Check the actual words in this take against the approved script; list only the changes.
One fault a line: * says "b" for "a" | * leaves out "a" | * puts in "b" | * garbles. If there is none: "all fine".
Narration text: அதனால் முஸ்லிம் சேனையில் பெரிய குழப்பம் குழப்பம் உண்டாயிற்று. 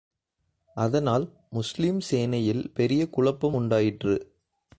* leaves out "குழப்பம்"